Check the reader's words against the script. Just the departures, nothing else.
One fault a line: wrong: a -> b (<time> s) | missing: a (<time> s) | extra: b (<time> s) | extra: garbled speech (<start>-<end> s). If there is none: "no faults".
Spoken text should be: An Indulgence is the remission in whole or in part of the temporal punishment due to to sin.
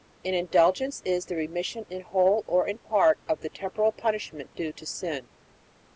missing: to (4.9 s)